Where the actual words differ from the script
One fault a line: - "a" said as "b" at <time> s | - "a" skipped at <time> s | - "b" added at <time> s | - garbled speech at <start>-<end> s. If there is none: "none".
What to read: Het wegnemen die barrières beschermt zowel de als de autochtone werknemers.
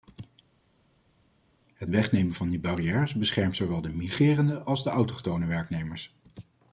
- "van" added at 2.3 s
- "migrerende" added at 3.9 s